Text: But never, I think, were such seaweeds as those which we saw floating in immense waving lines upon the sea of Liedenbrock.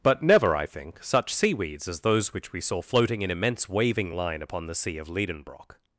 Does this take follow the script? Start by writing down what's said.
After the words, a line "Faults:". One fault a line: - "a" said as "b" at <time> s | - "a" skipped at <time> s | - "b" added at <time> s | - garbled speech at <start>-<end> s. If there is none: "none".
But never, I think, such seaweeds as those which we saw floating in immense waving line upon the sea of Liedenbrock.
Faults:
- "were" skipped at 1.0 s
- "lines" said as "line" at 4.1 s